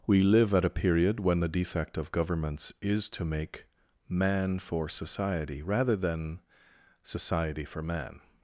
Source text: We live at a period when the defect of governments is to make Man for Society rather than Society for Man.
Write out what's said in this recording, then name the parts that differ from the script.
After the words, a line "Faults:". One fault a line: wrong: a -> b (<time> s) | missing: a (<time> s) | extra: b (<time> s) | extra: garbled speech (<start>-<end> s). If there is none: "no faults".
We live at a period when the defect of governments is to make Man for Society rather than Society for Man.
Faults:
no faults